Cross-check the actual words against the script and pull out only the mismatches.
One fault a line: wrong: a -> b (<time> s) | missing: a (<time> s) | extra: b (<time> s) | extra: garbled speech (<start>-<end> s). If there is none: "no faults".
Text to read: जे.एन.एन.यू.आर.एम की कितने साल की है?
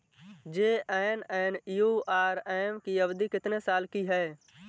extra: अवधि (3.0 s)